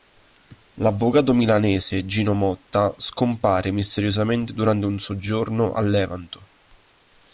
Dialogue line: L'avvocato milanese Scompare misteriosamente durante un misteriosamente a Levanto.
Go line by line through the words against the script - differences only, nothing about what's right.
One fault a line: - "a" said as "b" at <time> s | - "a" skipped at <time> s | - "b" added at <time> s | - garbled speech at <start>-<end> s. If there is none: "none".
- "Gino Motta" added at 2.0 s
- "misteriosamente" said as "soggiorno" at 5.0 s